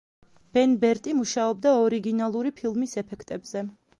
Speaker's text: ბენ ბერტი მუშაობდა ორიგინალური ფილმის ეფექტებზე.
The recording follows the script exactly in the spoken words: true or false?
true